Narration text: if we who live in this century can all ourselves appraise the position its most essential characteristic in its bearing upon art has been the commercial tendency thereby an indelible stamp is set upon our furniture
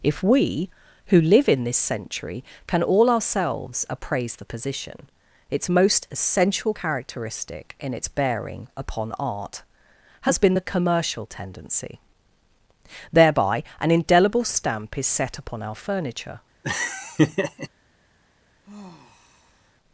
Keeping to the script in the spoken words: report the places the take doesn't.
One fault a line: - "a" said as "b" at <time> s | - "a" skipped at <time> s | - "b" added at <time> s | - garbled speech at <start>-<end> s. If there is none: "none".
none